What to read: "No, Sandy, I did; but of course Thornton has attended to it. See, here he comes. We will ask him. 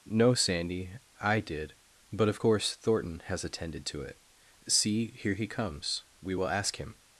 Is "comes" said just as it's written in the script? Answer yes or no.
yes